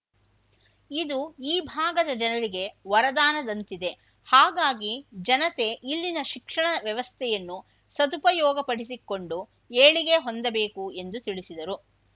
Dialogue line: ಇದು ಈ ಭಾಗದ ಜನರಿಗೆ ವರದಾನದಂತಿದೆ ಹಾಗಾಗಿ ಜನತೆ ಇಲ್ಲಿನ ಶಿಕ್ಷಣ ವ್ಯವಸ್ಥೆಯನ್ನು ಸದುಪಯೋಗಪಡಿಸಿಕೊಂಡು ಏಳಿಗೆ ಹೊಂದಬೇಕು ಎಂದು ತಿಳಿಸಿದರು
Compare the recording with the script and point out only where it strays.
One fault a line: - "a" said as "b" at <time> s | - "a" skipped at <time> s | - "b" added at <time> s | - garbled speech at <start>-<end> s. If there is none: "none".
none